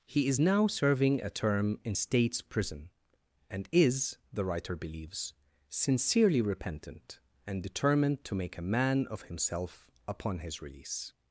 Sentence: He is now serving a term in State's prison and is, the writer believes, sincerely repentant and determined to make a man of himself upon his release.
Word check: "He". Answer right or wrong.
right